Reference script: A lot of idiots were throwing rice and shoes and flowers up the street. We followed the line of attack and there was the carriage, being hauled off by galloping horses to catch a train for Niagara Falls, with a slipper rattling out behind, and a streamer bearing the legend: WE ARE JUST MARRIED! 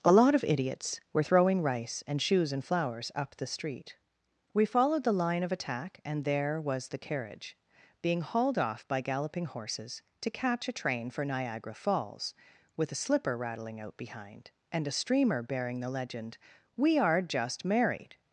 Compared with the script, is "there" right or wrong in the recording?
right